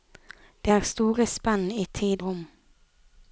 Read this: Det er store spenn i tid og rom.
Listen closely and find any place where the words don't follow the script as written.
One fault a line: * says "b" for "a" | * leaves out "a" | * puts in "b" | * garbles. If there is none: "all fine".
* leaves out "og"